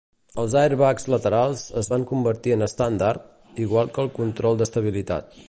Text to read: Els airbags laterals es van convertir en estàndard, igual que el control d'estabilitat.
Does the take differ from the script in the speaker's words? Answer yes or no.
no